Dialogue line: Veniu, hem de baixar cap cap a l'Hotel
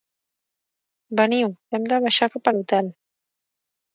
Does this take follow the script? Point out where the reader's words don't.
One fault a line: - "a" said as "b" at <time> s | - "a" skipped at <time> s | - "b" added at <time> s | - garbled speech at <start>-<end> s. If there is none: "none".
- "cap" skipped at 2.5 s